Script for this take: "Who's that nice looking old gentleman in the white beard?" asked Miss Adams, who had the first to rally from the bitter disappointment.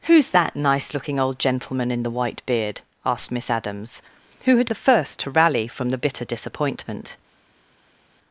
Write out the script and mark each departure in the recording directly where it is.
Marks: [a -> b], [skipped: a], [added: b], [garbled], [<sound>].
"Who's that nice looking old gentleman in the white beard?" asked Miss Adams, who had the first to rally from the bitter disappointment.